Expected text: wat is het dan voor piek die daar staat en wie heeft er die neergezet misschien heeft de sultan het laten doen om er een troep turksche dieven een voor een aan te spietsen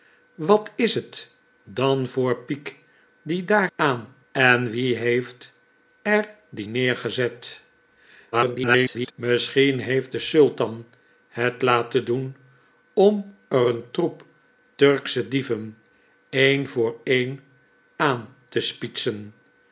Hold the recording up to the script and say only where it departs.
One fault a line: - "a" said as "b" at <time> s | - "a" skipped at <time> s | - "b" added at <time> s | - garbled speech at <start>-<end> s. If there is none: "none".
- "staat" said as "aan" at 3.7 s
- garbled speech at 8.3-9.1 s